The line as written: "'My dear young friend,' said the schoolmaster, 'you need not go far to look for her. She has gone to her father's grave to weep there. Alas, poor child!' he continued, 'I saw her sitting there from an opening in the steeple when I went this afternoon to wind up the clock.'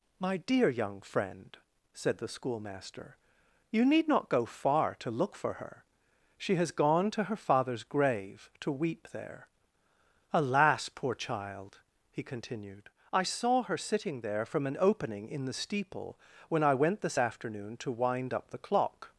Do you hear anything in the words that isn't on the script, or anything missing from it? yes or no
no